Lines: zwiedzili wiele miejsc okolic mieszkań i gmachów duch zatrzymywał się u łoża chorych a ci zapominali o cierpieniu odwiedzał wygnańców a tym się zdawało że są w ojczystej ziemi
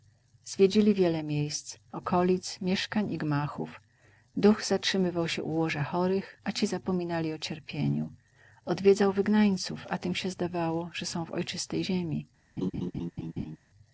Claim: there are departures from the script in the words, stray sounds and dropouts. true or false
true